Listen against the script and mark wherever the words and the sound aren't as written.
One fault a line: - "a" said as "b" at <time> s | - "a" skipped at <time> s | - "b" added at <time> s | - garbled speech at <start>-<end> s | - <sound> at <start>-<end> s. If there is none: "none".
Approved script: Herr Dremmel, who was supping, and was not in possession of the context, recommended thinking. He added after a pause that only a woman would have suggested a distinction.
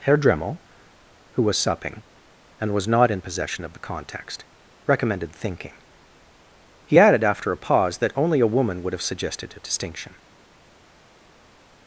none